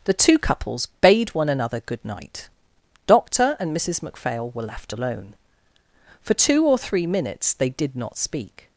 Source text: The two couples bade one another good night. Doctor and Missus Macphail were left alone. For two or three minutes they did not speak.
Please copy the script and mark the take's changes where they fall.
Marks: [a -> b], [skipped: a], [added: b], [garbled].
The two couples bade one another good night. Doctor and Missus Macphail were left alone. For two or three minutes they did not speak.